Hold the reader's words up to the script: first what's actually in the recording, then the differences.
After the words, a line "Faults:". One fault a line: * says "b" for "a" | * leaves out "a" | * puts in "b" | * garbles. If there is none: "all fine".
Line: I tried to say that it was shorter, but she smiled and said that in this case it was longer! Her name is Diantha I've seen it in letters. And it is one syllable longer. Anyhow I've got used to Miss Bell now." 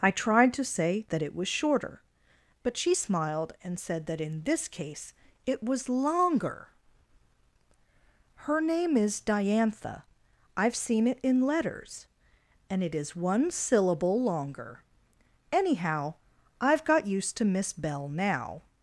I tried to say that it was shorter, but she smiled and said that in this case it was longer! Her name is Diantha I've seen it in letters. And it is one syllable longer. Anyhow I've got used to Miss Bell now."
Faults:
all fine